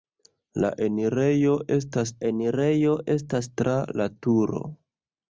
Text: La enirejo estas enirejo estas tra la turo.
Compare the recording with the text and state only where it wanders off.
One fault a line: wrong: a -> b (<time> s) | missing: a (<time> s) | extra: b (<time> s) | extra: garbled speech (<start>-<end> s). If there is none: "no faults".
no faults